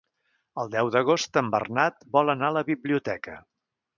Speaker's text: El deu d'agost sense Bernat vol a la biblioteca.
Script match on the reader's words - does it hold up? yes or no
no